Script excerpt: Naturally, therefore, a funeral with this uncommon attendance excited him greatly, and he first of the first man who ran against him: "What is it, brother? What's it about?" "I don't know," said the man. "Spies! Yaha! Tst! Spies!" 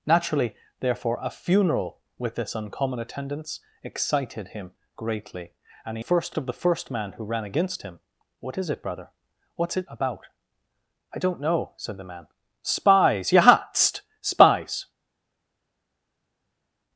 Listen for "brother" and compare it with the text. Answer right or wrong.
right